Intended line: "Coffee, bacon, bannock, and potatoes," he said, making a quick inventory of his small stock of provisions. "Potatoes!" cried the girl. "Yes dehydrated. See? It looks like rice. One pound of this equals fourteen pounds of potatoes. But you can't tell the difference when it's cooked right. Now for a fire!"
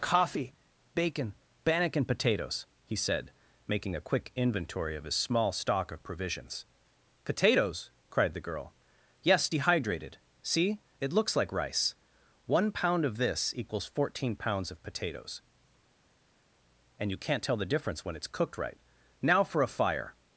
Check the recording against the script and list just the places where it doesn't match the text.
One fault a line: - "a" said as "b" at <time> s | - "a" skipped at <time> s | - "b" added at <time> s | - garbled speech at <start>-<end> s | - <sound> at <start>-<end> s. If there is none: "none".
- "But" said as "And" at 17.0 s